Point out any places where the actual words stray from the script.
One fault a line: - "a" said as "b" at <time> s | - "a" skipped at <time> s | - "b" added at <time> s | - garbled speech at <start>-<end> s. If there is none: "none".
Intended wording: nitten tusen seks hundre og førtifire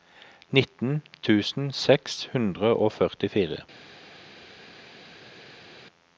none